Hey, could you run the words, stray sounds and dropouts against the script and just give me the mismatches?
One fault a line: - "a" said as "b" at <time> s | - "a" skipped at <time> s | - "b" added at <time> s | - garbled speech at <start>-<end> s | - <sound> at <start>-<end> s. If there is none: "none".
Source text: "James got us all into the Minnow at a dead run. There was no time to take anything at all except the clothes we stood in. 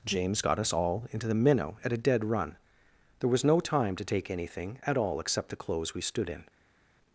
none